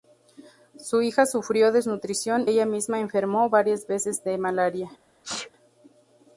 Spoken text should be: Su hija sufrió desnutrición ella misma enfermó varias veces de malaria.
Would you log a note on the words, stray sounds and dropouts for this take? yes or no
yes